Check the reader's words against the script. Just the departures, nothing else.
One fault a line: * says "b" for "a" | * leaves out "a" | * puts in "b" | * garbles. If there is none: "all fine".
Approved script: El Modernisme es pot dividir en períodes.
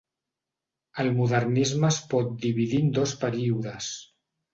* puts in "dos"